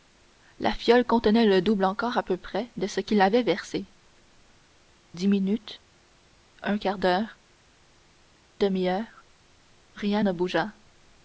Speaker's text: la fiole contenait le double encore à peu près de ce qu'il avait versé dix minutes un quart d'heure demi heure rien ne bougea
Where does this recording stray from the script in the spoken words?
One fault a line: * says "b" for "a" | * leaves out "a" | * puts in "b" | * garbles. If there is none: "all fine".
all fine